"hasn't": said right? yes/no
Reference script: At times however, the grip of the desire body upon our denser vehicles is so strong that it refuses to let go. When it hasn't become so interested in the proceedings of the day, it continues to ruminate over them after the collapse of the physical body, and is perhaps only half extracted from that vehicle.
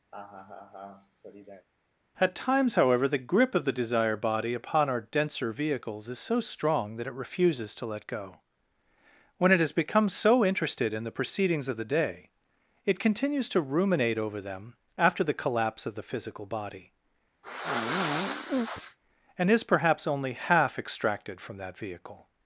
no